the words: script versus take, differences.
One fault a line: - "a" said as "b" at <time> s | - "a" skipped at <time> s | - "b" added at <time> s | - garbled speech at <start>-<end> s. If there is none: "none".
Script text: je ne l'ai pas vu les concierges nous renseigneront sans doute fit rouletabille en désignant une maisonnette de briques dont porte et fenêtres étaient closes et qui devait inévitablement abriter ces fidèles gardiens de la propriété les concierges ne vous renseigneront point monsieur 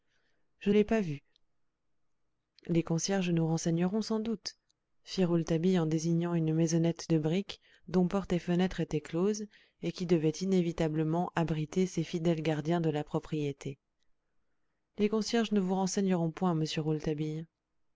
- "ne" skipped at 0.7 s